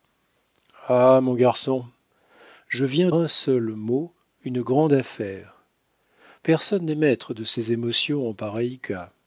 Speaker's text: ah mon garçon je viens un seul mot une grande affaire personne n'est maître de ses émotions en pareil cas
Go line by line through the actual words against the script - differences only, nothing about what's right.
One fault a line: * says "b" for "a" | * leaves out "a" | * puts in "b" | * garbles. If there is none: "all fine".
all fine